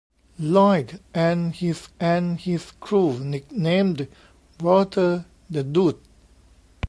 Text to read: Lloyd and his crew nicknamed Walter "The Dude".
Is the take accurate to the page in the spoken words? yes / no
no